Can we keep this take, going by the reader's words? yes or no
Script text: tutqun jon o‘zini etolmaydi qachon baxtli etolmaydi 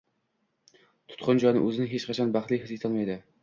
no